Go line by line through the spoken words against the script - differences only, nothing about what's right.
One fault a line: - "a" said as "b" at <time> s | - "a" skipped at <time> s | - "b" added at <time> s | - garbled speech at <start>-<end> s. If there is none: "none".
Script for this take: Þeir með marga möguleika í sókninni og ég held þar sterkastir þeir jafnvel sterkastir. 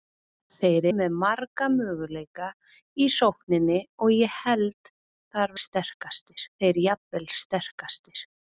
none